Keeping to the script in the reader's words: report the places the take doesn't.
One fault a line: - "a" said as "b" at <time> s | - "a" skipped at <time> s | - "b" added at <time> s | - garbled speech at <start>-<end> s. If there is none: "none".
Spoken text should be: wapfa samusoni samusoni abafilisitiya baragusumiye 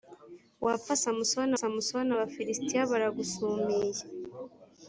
none